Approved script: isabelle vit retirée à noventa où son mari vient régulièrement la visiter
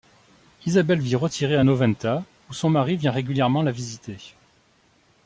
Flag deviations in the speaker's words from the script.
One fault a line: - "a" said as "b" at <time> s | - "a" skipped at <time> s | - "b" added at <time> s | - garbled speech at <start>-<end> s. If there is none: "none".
none